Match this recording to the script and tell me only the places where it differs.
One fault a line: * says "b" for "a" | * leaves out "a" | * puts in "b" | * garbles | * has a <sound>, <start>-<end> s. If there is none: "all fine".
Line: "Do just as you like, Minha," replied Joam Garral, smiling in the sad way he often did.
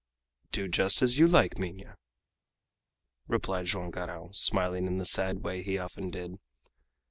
all fine